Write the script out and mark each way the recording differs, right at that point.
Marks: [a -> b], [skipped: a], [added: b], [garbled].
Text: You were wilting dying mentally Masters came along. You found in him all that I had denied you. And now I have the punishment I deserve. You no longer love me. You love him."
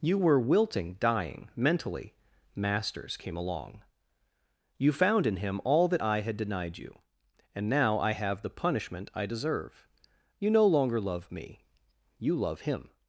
You were wilting dying mentally Masters came along. You found in him all that I had denied you. And now I have the punishment I deserve. You no longer love me. You love him."